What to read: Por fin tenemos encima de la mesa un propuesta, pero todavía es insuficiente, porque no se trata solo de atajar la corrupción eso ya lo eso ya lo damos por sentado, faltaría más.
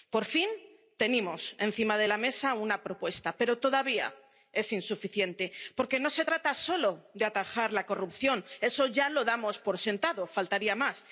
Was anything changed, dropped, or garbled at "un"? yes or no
yes